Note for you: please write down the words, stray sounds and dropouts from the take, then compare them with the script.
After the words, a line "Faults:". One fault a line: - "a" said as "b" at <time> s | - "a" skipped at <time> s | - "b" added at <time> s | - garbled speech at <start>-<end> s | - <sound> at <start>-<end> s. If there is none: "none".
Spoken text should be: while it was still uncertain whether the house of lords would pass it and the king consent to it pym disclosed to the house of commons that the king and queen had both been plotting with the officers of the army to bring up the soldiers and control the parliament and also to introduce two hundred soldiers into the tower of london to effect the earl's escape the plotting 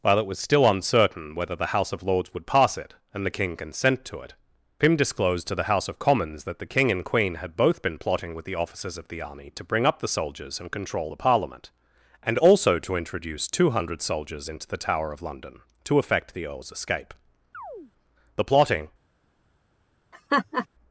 while it was still uncertain whether the house of lords would pass it and the king consent to it pym disclosed to the house of commons that the king and queen had both been plotting with the officers of the army to bring up the soldiers and control the parliament and also to introduce two hundred soldiers into the tower of london to effect the earl's escape the plotting
Faults:
- chirp at 17.5-17.9 s
- laugh at 20.1-20.7 s